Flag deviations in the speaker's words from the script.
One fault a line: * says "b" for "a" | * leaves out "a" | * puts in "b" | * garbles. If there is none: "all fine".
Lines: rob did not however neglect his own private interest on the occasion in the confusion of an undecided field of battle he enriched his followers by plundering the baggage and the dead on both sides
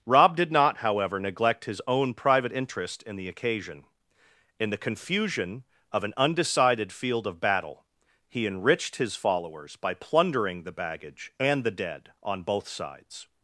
* says "in" for "on"